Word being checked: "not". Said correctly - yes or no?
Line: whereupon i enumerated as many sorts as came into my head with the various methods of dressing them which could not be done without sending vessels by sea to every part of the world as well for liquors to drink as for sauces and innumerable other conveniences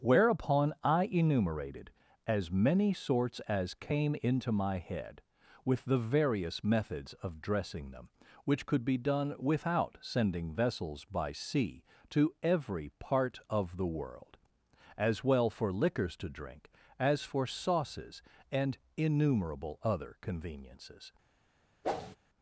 no